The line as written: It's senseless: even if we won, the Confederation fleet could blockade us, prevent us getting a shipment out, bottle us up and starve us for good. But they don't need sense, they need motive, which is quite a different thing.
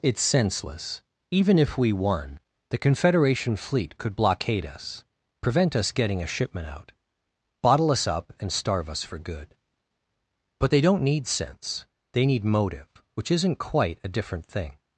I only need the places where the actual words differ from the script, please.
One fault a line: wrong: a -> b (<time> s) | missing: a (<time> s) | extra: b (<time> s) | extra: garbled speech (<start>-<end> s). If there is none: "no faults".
wrong: is -> isn't (13.3 s)